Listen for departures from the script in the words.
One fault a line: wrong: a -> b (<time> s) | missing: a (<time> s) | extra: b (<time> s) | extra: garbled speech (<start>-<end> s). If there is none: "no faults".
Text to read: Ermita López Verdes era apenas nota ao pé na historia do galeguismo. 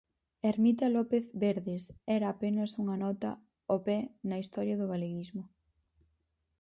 extra: unha (2.8 s)